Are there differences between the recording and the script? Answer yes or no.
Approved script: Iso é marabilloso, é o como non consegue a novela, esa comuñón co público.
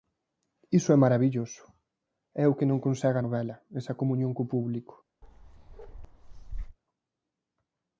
yes